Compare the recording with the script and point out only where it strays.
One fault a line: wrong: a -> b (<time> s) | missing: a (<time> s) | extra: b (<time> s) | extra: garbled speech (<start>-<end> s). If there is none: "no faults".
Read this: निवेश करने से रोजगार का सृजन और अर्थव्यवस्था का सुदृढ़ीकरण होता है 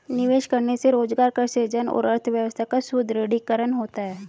no faults